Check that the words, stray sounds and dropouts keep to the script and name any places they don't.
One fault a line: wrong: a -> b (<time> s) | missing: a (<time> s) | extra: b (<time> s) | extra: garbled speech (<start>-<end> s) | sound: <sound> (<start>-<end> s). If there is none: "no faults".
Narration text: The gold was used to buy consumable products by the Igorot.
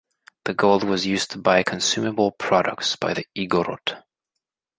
no faults